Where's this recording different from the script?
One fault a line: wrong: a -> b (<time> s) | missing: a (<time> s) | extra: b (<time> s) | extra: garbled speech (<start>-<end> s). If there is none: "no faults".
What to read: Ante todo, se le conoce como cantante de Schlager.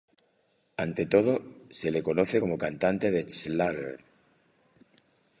no faults